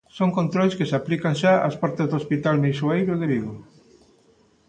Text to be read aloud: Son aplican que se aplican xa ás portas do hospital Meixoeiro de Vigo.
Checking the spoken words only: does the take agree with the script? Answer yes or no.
no